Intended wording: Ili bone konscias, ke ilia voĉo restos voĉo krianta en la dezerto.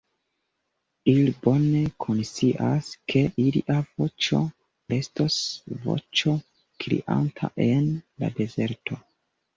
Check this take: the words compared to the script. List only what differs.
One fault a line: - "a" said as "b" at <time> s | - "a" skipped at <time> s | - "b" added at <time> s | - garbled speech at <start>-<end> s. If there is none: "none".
none